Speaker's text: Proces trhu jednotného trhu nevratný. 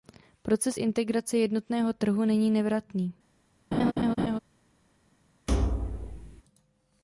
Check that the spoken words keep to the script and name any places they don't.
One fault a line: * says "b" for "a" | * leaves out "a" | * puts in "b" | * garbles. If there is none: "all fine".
* says "integrace" for "trhu"
* puts in "není"